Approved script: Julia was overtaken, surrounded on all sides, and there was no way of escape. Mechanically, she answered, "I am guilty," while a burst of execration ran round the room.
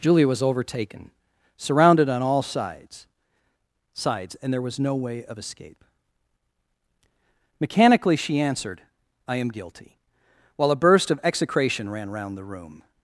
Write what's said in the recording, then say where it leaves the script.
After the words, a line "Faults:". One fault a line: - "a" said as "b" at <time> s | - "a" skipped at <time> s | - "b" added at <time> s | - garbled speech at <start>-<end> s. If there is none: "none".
Julia was overtaken, surrounded on all sides sides, and there was no way of escape. Mechanically, she answered, "I am guilty," while a burst of execration ran round the room.
Faults:
- "sides" added at 3.9 s